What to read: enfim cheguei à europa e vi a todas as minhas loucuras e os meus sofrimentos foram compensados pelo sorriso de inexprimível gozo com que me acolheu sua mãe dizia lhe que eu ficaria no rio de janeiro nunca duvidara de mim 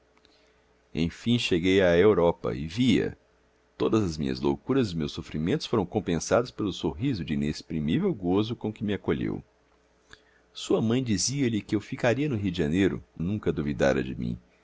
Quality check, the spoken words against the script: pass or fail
pass